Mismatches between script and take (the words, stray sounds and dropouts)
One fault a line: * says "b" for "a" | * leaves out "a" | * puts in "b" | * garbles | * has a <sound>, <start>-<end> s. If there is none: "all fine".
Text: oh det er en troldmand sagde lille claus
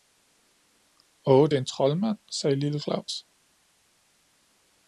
all fine